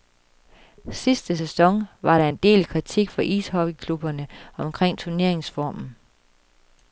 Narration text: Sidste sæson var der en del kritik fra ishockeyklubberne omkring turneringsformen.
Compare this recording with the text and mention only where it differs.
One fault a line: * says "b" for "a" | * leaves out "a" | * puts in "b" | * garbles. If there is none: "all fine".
all fine